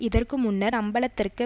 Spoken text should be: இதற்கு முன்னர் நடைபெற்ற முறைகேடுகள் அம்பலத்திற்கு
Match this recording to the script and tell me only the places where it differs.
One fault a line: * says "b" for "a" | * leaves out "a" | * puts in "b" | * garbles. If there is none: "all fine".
* leaves out "நடைபெற்ற முறைகேடுகள்"